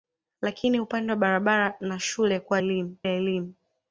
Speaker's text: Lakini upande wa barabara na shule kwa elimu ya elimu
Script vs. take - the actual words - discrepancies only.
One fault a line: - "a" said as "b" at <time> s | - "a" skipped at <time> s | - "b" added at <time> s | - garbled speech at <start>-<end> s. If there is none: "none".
none